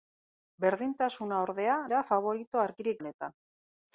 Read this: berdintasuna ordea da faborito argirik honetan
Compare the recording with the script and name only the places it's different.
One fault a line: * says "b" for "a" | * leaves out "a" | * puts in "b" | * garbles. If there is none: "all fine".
all fine